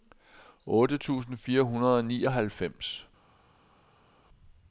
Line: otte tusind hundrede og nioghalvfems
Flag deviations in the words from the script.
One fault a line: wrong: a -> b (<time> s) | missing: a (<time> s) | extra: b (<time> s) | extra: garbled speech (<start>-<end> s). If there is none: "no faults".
extra: fire (1.4 s)